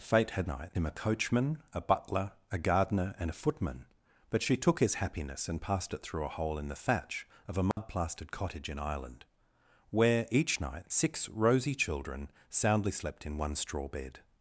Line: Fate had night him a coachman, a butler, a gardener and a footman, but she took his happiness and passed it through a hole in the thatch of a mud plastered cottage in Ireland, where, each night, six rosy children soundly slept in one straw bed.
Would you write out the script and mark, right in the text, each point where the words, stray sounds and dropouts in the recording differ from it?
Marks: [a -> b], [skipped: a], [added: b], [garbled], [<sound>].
Fate had night him a coachman, a butler, a gardener and a footman, but she took his happiness and passed it through a hole in the thatch of a mud [dropout] plastered cottage in Ireland, where, each night, six rosy children soundly slept in one straw bed.